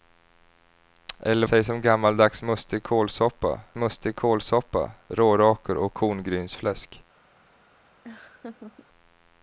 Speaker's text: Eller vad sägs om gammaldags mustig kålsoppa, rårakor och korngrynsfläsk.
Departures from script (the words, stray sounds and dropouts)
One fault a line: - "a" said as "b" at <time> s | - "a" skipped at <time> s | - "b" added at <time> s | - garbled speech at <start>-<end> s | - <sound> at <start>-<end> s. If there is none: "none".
- "vad" skipped at 1.5 s
- "mustig kålsoppa" added at 3.8 s
- laugh at 8.0-8.9 s